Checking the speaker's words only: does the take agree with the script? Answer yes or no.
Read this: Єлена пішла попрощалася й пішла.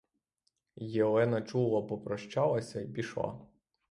no